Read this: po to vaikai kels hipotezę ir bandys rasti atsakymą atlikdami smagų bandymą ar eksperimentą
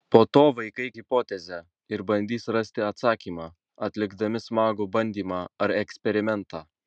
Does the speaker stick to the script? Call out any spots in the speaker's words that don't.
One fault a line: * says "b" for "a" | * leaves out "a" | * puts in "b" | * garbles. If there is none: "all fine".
* leaves out "kels"